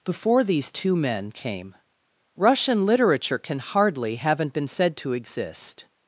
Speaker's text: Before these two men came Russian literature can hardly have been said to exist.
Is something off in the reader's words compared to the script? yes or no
yes